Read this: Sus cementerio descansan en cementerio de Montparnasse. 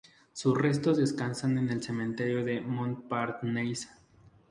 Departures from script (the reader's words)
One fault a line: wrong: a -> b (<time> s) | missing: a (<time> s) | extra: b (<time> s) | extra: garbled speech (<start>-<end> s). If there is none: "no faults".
wrong: cementerio -> restos (0.6 s)
extra: el (1.7 s)